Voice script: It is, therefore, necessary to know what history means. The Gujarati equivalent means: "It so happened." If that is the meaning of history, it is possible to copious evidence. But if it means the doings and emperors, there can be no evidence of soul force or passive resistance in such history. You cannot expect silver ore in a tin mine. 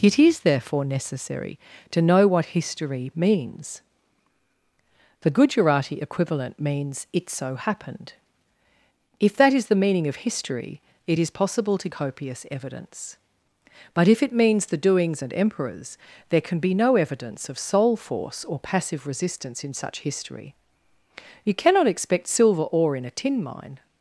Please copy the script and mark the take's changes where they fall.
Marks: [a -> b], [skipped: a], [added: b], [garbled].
It is, therefore, necessary to know what history means. The Gujarati equivalent means: "It so happened." If that is the meaning of history, it is possible to copious evidence. But if it means the doings and emperors, there can be no evidence of soul force or passive resistance in such history. You cannot expect silver ore in a tin mine.